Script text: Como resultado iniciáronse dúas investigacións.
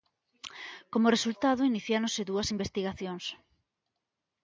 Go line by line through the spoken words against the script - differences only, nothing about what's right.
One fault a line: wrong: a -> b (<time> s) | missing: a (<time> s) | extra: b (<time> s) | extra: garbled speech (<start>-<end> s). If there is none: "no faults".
no faults